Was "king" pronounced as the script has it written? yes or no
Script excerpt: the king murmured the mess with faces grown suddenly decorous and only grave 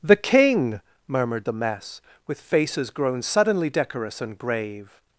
yes